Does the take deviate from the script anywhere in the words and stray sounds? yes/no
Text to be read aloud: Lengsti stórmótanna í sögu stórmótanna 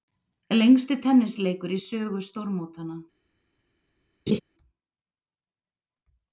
yes